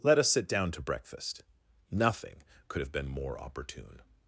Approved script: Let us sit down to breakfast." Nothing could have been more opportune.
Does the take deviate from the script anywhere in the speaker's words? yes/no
no